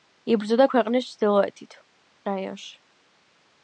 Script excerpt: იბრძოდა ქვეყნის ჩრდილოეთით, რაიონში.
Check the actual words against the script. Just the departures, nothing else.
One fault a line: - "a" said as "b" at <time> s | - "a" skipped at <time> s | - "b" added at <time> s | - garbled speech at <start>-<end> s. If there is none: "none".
none